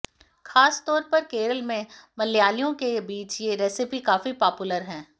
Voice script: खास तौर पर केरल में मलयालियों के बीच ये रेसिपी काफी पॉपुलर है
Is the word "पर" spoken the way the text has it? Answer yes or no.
yes